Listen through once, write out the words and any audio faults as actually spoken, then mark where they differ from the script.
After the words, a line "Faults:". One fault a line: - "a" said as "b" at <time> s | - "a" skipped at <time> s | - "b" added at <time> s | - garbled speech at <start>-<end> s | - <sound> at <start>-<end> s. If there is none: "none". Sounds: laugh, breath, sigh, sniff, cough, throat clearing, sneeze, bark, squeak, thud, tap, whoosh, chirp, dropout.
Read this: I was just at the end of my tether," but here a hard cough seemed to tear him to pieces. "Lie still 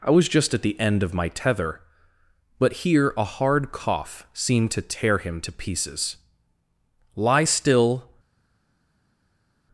I was just at the end of my tether," but here a hard cough seemed to tear him to pieces. "Lie still
Faults:
none